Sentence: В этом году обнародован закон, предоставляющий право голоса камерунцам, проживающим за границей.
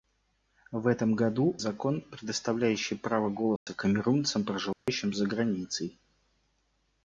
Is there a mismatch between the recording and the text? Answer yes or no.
yes